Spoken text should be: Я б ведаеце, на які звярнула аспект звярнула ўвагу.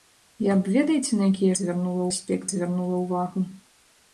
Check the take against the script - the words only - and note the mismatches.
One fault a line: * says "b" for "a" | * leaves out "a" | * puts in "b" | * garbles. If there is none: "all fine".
all fine